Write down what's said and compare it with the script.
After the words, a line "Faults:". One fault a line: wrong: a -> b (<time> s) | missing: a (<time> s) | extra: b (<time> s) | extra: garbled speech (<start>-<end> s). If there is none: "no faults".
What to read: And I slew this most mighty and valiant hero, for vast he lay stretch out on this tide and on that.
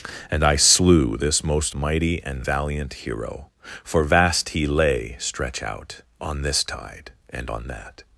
And I slew this most mighty and valiant hero, for vast he lay stretch out on this tide and on that.
Faults:
no faults